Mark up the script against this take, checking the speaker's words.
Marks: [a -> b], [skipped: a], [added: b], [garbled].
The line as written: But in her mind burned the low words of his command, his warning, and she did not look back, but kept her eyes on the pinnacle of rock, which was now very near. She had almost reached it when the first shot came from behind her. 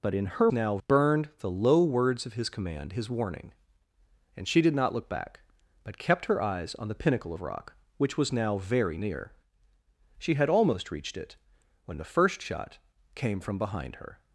But in her [mind -> now] burned the low words of his command, his warning, and she did not look back, but kept her eyes on the pinnacle of rock, which was now very near. She had almost reached it when the first shot came from behind her.